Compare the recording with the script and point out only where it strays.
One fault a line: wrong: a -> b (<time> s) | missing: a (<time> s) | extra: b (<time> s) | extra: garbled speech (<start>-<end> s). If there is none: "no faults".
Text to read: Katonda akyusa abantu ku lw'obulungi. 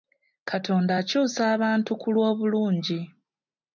no faults